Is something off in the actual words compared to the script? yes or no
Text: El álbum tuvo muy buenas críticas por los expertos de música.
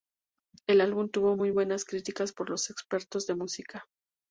no